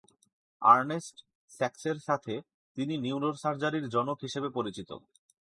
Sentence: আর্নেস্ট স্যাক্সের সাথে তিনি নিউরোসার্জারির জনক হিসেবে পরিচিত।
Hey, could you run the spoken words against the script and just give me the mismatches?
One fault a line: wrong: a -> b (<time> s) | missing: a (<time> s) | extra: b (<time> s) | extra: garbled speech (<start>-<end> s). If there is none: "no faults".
no faults